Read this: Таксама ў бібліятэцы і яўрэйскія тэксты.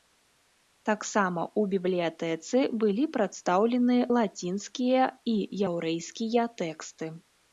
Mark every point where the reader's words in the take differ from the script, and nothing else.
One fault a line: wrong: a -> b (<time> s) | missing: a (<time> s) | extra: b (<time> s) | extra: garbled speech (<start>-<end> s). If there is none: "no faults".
extra: былі прадстаўлены лацінскія (2.8 s)